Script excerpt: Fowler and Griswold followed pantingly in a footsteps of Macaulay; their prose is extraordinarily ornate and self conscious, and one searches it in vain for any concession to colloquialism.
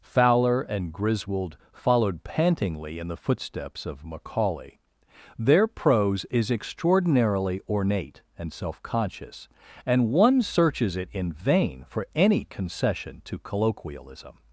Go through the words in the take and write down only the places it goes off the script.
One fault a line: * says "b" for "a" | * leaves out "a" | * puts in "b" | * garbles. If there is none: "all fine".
* says "the" for "a"